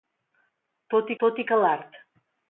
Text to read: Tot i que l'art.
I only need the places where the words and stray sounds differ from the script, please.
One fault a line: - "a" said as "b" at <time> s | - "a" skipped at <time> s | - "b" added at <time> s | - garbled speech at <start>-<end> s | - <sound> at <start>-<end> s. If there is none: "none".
- "tot" added at 1.2 s